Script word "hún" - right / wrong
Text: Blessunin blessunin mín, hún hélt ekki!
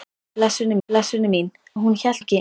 right